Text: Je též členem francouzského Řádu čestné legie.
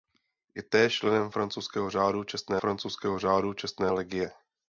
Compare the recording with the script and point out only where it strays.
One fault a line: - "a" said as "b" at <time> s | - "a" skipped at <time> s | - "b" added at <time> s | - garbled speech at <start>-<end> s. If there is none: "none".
- "francouzského Řádu čestné" added at 2.6 s